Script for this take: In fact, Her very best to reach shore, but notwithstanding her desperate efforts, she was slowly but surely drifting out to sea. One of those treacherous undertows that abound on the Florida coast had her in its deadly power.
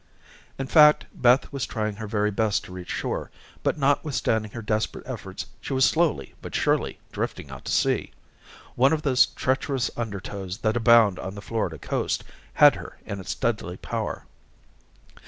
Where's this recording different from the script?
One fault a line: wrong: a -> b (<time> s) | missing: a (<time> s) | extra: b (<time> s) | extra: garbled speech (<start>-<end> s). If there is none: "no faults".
extra: Beth was trying (1.1 s)